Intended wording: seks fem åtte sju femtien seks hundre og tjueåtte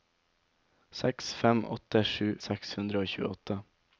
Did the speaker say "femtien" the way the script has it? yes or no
no